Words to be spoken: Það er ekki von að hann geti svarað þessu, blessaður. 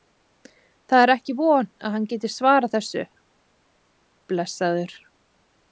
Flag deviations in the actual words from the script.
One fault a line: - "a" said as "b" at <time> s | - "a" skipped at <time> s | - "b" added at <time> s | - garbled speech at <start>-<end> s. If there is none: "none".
none